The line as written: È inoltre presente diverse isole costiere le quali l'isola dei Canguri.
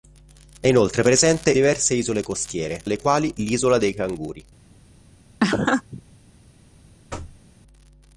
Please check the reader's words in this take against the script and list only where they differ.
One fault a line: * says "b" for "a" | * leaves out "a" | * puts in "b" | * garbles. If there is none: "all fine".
all fine